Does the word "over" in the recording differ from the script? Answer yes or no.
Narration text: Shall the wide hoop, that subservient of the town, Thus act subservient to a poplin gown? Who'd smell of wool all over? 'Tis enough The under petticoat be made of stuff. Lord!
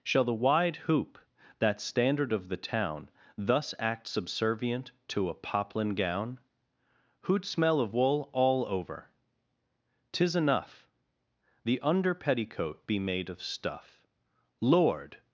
no